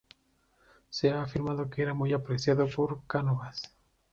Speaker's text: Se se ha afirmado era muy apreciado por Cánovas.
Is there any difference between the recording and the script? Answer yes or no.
yes